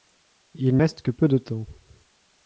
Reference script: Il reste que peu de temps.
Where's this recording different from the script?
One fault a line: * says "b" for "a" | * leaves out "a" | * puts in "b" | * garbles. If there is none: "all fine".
all fine